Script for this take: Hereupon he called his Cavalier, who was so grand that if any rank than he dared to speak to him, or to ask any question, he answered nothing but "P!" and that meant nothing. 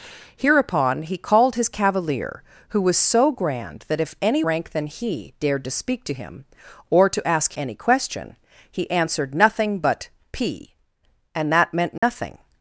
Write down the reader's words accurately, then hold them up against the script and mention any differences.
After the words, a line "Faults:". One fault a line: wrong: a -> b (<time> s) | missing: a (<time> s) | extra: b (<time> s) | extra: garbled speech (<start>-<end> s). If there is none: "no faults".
Hereupon he called his Cavalier, who was so grand that if any rank than he dared to speak to him, or to ask any question, he answered nothing but "P!" and that meant nothing.
Faults:
no faults